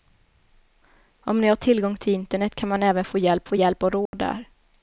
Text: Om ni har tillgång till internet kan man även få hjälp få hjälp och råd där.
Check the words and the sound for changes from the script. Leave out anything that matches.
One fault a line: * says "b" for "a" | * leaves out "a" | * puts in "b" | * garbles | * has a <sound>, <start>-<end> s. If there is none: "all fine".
* has a dropout, 4.1-4.1 s